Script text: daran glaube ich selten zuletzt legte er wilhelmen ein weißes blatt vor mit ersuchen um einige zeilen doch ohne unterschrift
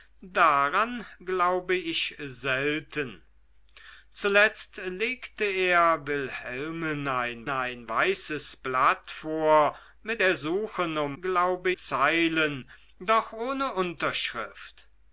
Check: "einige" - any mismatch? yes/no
yes